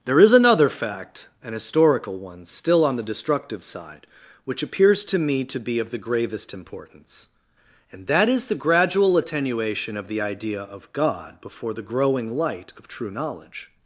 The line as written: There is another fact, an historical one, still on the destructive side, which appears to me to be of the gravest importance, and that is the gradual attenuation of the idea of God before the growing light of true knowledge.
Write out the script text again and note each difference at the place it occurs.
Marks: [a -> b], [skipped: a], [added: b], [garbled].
There is another fact, an historical one, still on the destructive side, which appears to me to be of the gravest importance, and that is the gradual attenuation of the idea of God before the growing light of true knowledge.